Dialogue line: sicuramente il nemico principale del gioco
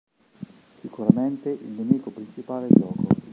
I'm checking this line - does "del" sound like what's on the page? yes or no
no